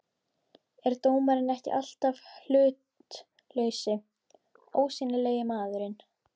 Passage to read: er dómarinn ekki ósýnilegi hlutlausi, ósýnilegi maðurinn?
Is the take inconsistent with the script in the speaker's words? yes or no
yes